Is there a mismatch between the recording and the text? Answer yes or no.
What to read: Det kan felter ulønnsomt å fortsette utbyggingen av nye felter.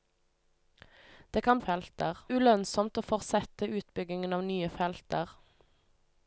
no